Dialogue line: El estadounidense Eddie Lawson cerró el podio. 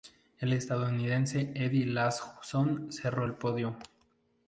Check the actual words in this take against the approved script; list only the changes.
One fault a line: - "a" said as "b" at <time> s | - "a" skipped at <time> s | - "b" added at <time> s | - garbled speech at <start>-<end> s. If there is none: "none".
none